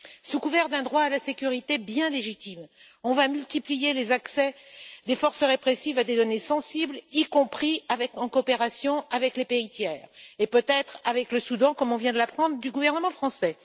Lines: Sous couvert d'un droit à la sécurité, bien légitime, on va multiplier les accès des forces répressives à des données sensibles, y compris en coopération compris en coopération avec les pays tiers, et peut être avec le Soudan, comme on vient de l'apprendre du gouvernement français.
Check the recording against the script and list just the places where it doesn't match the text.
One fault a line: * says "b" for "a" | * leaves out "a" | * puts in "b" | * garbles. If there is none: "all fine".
* leaves out "compris en coopération"